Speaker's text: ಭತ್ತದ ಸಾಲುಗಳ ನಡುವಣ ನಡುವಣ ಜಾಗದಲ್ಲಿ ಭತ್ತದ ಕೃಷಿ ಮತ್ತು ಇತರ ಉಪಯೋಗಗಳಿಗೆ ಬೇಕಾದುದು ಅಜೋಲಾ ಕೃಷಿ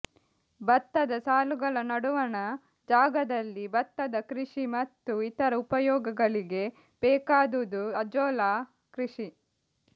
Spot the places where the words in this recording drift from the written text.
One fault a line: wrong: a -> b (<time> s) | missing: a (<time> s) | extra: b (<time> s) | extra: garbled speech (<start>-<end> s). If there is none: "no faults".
missing: ನಡುವಣ (2.4 s)